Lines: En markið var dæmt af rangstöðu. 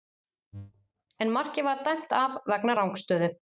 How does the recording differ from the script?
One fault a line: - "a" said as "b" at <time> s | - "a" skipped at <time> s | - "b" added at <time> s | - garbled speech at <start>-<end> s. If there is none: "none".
- "vegna" added at 2.5 s